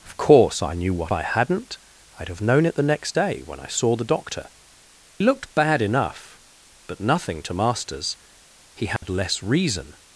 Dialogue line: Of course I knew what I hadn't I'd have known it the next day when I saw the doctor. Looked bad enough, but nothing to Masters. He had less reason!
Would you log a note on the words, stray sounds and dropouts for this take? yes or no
yes